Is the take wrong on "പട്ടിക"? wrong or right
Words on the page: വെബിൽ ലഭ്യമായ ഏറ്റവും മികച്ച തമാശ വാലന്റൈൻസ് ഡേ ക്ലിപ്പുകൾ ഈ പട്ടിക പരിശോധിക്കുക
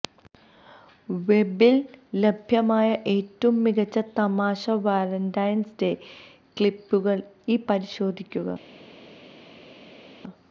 wrong